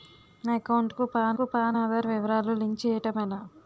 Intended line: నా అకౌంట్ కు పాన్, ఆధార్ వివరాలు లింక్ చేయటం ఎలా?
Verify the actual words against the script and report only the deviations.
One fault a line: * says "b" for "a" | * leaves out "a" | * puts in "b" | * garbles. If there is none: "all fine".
* puts in "కు పాన్"